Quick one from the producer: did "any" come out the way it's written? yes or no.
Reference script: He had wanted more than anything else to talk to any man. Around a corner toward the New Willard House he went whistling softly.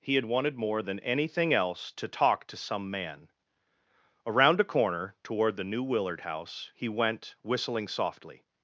no